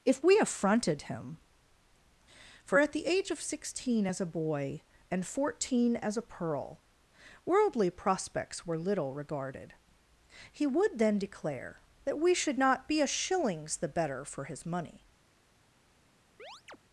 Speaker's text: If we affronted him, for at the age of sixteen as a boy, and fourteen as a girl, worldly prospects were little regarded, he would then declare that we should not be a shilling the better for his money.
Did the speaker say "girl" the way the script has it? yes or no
no